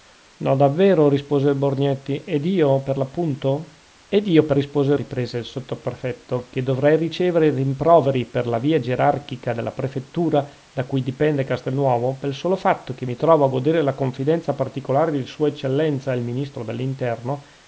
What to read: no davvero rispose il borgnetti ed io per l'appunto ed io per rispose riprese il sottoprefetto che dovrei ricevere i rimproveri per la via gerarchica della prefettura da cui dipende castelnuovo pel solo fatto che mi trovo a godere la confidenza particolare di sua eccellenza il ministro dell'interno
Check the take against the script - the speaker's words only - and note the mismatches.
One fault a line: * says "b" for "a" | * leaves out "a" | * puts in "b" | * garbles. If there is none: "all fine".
all fine